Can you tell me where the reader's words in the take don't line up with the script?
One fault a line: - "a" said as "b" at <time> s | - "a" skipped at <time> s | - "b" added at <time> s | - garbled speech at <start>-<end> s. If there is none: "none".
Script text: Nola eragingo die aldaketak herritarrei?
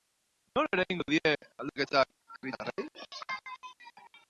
none